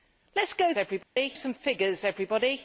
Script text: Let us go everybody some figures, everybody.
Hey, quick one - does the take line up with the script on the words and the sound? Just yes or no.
no